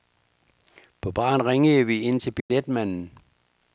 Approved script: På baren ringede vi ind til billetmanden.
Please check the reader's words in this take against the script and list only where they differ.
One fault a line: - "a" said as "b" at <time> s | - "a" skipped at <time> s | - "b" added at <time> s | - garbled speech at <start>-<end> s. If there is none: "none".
none